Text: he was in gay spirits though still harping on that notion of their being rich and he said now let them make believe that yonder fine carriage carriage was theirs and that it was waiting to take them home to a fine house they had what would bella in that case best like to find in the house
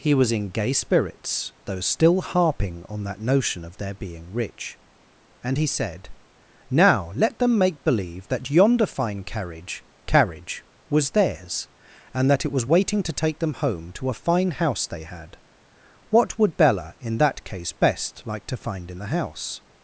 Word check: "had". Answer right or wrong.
right